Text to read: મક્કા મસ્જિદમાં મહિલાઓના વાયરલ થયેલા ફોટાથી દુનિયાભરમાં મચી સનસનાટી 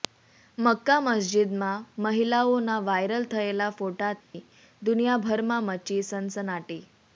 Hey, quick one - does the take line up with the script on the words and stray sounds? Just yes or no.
no